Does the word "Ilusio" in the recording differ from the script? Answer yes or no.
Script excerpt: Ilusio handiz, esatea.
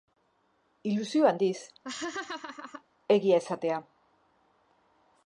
no